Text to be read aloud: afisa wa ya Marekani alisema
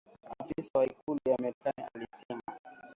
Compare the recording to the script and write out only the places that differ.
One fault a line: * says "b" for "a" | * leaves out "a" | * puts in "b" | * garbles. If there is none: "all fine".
* puts in "ikulu"